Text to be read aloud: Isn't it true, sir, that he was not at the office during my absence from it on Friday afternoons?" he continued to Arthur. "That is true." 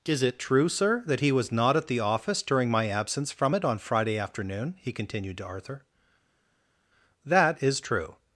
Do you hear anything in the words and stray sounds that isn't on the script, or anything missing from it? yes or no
yes